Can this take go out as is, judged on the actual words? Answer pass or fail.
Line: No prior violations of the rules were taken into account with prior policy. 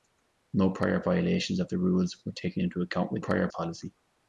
pass